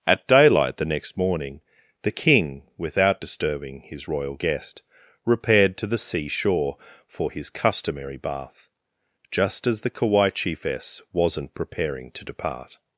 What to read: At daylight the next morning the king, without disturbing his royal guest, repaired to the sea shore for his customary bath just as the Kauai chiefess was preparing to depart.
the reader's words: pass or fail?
fail